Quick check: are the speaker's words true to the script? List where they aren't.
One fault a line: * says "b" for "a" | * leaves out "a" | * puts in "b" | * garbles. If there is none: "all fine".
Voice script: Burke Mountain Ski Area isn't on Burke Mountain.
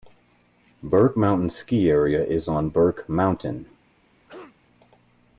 * says "is" for "isn't"